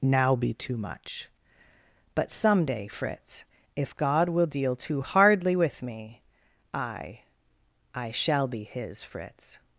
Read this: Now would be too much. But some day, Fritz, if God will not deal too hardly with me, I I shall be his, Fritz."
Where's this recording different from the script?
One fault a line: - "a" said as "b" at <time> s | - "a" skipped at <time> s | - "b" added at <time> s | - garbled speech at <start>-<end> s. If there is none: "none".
- "would" skipped at 0.4 s
- "not" skipped at 4.5 s